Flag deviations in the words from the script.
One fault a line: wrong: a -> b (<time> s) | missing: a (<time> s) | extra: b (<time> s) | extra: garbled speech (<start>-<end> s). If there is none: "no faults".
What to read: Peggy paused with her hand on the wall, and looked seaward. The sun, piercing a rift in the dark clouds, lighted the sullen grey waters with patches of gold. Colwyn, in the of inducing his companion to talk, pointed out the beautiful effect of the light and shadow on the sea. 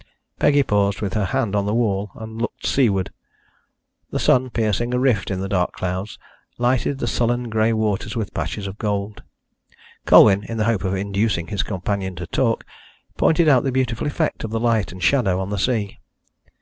extra: hope (10.6 s)